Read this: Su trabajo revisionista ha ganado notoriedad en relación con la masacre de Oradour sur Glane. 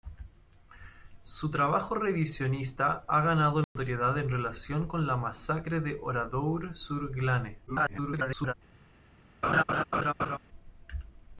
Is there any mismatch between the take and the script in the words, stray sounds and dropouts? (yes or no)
yes